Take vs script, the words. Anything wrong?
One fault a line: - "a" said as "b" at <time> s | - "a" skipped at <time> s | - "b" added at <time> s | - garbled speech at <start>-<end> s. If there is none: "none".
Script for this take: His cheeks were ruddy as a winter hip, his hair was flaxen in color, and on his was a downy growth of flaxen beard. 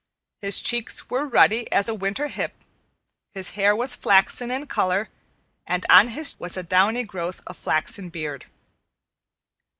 none